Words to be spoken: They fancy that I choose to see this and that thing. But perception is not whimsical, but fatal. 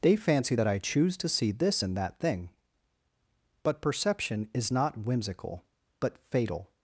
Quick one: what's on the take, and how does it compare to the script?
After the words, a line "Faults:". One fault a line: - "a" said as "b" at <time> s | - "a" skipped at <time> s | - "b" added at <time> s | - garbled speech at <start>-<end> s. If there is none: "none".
They fancy that I choose to see this and that thing. But perception is not whimsical, but fatal.
Faults:
none